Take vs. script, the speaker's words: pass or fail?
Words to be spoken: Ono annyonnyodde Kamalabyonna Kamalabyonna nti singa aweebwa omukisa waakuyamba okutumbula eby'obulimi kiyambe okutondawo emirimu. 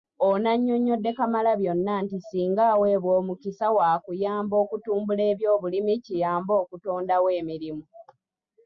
fail